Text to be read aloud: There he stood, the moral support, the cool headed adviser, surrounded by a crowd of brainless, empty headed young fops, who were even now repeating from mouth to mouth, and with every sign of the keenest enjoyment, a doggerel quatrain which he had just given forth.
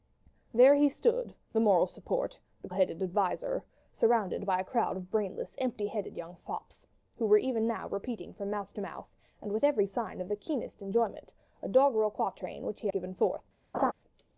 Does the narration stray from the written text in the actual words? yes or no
yes